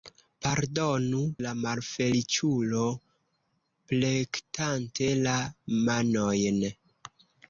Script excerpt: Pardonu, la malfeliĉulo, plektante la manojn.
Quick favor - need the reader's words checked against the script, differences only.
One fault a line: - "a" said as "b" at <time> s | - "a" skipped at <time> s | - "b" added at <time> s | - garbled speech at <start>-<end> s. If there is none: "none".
none